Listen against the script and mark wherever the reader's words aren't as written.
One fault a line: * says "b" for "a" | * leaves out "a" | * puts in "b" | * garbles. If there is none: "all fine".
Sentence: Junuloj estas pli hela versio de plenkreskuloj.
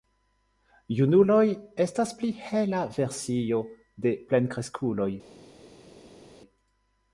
all fine